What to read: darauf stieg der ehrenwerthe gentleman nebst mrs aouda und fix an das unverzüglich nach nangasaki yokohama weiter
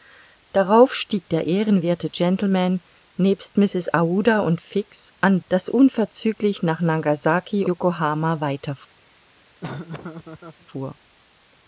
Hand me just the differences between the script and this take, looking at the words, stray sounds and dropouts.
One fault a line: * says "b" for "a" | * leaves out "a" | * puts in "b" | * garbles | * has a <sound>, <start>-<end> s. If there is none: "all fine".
* has a laugh, 9.6-10.7 s